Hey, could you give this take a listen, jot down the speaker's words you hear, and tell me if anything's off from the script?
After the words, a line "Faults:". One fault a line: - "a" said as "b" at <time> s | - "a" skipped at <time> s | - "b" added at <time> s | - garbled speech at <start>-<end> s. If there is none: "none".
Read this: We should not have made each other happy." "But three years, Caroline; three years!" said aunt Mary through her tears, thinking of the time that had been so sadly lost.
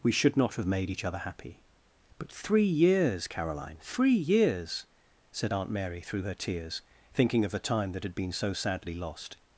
We should not have made each other happy." "But three years, Caroline; three years!" said aunt Mary through her tears, thinking of the time that had been so sadly lost.
Faults:
none